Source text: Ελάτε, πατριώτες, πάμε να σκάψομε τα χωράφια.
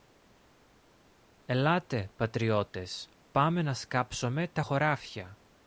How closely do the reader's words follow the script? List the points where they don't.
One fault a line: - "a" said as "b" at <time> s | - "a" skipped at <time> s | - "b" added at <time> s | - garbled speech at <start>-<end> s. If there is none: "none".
none